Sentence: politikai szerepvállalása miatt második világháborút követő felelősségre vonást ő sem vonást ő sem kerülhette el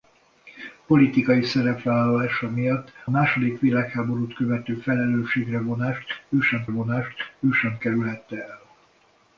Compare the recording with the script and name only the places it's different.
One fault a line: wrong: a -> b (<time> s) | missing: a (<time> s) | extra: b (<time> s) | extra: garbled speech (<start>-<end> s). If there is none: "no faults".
no faults